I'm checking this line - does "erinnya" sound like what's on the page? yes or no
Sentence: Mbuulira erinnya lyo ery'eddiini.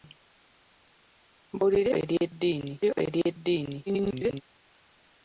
no